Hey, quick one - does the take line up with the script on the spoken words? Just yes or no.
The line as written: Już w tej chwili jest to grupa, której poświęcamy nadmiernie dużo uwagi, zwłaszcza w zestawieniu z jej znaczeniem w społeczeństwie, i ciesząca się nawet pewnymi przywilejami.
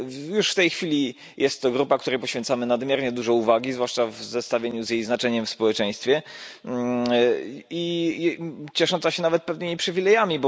yes